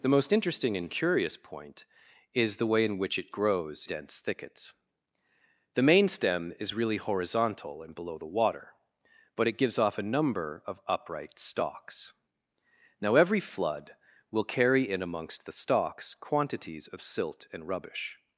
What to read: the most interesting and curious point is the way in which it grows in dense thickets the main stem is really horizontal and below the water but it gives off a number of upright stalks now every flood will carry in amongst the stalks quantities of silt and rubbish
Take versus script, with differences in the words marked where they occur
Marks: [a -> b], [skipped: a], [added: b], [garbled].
the most interesting and curious point is the way in which it grows [skipped: in] dense thickets the main stem is really horizontal and below the water but it gives off a number of upright stalks now every flood will carry in amongst the stalks quantities of silt and rubbish